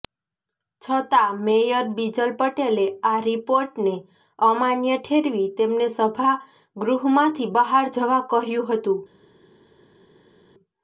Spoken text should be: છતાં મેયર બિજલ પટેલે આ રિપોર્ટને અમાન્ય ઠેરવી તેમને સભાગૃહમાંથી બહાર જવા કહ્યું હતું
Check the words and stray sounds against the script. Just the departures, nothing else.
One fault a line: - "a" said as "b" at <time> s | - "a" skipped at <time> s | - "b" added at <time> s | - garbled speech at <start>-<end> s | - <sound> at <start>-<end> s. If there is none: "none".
none